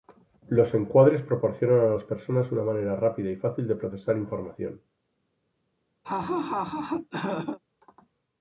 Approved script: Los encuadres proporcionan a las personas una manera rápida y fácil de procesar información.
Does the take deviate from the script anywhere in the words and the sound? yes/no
yes